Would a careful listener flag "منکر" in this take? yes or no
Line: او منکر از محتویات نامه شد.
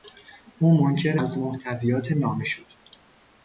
no